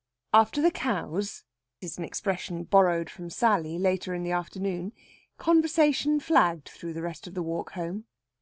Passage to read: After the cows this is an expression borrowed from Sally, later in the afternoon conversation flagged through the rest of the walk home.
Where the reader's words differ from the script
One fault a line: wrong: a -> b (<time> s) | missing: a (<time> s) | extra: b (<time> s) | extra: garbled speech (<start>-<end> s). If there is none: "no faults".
missing: this (1.4 s)